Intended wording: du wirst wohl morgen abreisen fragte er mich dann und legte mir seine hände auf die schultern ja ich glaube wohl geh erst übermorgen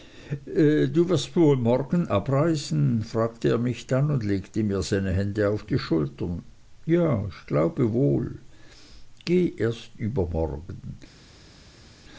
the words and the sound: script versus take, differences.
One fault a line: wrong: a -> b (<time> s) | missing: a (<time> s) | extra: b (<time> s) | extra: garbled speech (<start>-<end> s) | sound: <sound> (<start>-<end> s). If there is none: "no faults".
no faults